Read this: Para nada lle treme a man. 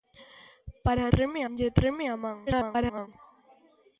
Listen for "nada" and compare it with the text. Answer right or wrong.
wrong